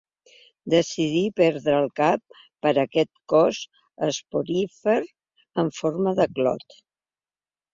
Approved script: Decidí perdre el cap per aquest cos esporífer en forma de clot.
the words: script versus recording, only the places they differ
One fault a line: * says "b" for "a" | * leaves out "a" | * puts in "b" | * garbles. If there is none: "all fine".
all fine